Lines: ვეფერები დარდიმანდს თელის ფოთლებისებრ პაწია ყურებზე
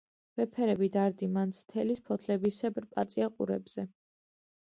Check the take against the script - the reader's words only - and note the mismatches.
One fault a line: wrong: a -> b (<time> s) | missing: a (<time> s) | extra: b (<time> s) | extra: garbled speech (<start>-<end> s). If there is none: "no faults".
no faults